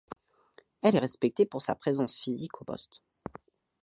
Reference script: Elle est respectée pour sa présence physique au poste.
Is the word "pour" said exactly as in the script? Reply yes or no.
yes